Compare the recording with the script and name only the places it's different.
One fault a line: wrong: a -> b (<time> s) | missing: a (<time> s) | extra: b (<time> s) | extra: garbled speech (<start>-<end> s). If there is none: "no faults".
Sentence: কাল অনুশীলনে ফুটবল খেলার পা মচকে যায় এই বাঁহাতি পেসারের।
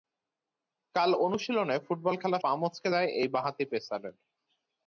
no faults